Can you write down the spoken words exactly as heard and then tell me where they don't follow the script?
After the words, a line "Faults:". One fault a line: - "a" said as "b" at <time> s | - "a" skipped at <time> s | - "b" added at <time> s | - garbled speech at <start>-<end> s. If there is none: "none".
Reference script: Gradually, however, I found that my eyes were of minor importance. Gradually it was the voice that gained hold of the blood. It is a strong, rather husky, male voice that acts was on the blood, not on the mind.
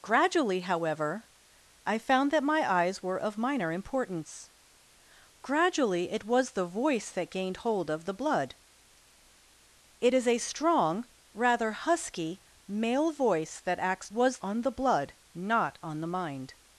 Gradually, however, I found that my eyes were of minor importance. Gradually it was the voice that gained hold of the blood. It is a strong, rather husky, male voice that acts was on the blood, not on the mind.
Faults:
none